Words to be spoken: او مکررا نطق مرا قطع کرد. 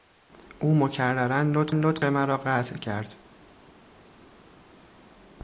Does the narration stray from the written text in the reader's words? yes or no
yes